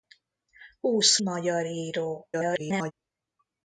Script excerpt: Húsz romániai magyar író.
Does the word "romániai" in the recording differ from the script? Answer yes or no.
yes